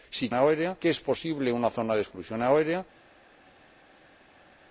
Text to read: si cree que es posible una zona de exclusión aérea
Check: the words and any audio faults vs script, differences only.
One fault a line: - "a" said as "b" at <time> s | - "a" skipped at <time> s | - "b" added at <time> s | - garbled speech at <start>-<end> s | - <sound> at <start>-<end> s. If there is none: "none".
- "cree" said as "aérea" at 0.3 s